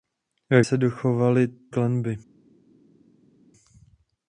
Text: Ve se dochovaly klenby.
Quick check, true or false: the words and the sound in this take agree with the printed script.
true